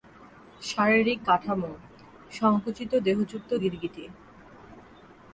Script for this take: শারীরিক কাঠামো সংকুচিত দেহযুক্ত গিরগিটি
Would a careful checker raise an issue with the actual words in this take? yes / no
no